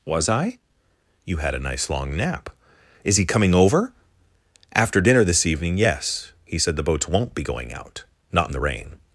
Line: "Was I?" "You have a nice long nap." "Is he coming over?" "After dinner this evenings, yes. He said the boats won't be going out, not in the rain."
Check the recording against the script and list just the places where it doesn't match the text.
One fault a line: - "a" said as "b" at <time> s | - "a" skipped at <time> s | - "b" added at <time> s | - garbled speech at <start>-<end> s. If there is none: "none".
- "have" said as "had" at 1.4 s
- "evenings" said as "evening" at 5.5 s